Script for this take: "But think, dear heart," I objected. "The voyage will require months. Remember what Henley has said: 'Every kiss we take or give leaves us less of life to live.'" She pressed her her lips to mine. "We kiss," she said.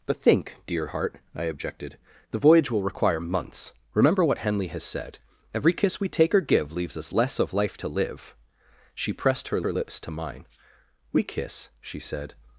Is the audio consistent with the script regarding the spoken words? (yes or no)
yes